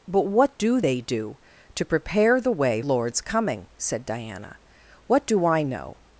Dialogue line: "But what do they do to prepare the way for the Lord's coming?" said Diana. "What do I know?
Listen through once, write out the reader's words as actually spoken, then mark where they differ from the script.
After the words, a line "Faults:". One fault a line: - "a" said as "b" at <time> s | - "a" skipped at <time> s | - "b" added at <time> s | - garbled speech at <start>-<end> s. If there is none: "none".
"But what do they do to prepare the way Lord's coming?" said Diana. "What do I know?
Faults:
- "for the" skipped at 2.8 s